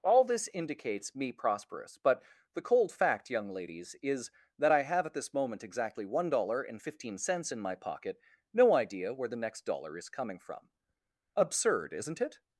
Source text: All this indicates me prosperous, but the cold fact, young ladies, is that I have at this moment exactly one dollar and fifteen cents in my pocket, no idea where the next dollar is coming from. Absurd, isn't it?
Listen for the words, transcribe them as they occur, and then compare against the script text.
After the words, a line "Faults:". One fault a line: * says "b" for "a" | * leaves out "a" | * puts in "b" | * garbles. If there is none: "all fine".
All this indicates me prosperous, but the cold fact, young ladies, is that I have at this moment exactly one dollar and fifteen cents in my pocket, no idea where the next dollar is coming from. Absurd, isn't it?
Faults:
all fine